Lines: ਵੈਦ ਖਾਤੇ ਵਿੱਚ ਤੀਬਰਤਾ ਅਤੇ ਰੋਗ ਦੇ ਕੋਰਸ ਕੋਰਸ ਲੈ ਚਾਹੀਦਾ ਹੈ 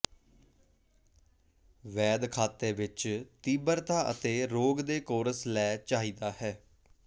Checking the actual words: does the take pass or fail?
fail